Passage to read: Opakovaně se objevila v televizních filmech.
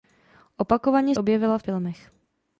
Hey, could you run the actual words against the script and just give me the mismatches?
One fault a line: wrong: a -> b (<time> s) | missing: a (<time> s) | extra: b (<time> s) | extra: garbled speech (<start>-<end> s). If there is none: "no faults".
missing: se (1.1 s)
missing: televizních (1.6 s)